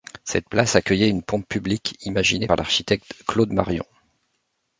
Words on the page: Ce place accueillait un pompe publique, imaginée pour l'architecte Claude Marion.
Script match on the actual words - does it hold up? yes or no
no